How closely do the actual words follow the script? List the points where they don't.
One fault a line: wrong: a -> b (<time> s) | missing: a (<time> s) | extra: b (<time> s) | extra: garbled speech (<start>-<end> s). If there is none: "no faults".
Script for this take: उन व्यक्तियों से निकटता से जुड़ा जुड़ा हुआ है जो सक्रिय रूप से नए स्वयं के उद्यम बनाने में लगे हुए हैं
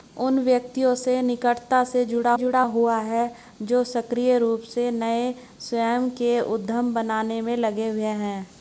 no faults